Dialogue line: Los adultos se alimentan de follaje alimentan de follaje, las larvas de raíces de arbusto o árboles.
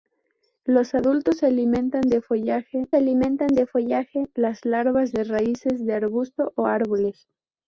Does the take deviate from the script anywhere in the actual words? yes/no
no